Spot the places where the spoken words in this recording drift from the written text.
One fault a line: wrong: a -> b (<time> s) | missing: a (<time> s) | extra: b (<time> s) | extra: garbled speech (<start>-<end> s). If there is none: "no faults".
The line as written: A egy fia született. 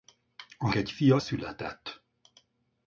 no faults